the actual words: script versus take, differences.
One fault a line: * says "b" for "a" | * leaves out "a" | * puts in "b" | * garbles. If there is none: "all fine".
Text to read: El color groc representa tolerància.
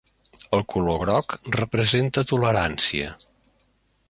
all fine